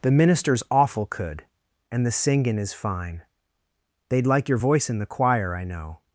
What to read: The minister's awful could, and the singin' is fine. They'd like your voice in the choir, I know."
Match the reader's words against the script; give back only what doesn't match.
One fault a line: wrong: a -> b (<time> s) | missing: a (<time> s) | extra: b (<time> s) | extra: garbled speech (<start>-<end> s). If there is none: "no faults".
no faults